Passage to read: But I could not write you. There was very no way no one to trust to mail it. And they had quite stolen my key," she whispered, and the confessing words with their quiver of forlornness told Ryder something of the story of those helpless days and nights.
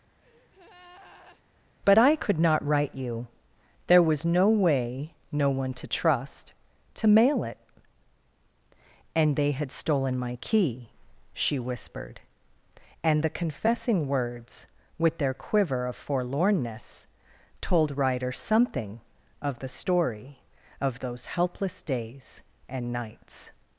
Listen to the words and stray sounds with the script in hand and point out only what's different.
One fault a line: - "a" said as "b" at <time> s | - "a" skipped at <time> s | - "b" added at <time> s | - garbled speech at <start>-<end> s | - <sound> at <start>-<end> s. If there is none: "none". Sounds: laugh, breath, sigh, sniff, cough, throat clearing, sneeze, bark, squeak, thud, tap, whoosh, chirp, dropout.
- breath at 0.2-1.4 s
- "very" skipped at 4.2 s
- "quite" skipped at 9.7 s